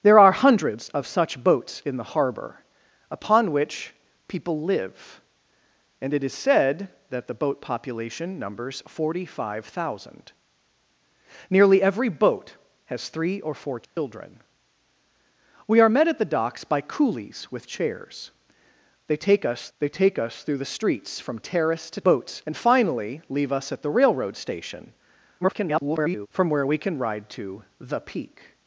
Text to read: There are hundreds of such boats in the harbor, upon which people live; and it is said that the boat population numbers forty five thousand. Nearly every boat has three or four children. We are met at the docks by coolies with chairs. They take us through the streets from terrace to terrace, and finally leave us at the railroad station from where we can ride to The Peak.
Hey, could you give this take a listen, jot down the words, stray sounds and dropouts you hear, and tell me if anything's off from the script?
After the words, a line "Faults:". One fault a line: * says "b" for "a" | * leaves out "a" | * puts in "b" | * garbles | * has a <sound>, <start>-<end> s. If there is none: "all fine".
There are hundreds of such boats in the harbor, upon which people live; and it is said that the boat population numbers forty five thousand. Nearly every boat has three or four children. We are met at the docks by coolies with chairs. They take us they take us through the streets from terrace to boats, and finally leave us at the railroad station [garbled] from where we can ride to The Peak.
Faults:
* has a dropout, 13.8-14.0 s
* puts in "they take us"
* says "boats" for "terrace"
* garbles